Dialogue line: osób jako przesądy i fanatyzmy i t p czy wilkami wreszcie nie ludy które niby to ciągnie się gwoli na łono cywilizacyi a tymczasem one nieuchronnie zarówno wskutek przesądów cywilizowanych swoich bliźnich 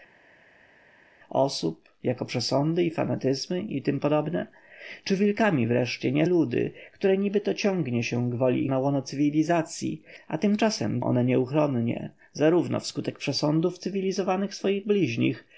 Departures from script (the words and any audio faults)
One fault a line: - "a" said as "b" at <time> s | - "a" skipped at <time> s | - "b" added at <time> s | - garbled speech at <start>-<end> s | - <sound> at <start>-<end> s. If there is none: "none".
none